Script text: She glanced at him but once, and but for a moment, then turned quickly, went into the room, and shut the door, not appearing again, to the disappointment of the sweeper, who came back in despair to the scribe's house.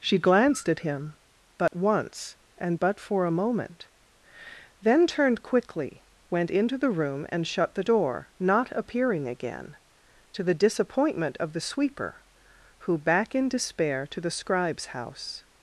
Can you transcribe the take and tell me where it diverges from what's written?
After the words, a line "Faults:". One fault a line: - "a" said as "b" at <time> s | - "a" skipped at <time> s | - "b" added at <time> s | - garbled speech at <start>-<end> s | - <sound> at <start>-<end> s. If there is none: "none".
She glanced at him but once, and but for a moment, then turned quickly, went into the room, and shut the door, not appearing again, to the disappointment of the sweeper, who back in despair to the scribe's house.
Faults:
- dropout at 1.7-1.7 s
- "came" skipped at 13.0 s